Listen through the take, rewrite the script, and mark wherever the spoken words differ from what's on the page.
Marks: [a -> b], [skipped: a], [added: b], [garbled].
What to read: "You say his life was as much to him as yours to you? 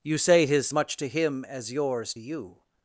"You say his [skipped: life was as] much to him as yours [skipped: to] you?